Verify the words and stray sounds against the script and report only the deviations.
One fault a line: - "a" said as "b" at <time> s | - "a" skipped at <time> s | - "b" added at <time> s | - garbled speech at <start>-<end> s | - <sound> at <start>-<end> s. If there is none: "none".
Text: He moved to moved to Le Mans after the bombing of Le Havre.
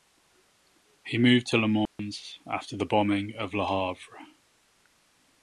- "moved to" skipped at 1.6 s
- dropout at 1.9-2.0 s